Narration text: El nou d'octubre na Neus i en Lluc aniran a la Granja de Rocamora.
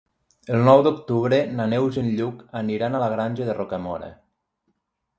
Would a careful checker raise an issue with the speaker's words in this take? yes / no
no